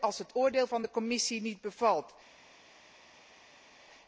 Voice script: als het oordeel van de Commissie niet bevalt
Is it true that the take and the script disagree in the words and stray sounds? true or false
false